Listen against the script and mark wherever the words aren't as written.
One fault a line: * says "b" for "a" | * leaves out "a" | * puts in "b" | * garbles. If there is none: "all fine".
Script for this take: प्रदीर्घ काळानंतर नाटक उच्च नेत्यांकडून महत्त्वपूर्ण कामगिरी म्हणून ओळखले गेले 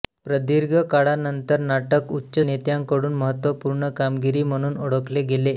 all fine